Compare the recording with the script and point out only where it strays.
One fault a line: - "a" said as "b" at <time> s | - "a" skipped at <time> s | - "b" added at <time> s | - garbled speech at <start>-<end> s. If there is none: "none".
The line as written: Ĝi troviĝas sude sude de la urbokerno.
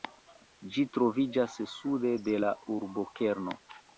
- "sude" skipped at 2.1 s